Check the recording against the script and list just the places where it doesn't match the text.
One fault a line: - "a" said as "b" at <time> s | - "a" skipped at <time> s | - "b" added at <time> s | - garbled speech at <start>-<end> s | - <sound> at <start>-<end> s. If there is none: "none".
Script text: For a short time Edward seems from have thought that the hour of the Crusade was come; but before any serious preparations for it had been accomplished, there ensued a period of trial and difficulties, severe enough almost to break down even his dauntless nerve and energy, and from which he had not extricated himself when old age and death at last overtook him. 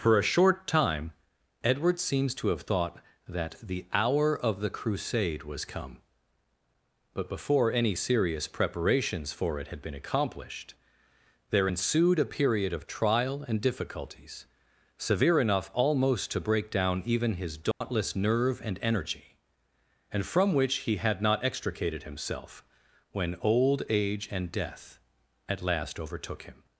- "from" said as "to" at 2.4 s
- dropout at 17.7-17.8 s